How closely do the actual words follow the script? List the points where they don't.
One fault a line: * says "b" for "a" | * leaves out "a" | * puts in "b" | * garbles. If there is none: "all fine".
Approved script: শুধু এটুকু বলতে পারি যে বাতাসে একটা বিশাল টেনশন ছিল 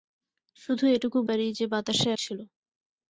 * leaves out "বলতে"
* leaves out "একটা বিশাল টেনশন"